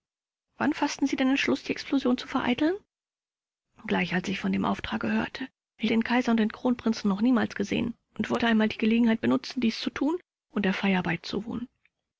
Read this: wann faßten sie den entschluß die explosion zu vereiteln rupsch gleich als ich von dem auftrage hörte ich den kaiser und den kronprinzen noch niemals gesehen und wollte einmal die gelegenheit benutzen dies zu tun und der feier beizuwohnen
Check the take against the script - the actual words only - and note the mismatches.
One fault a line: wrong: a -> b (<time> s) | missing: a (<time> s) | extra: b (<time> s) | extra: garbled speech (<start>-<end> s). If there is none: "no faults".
no faults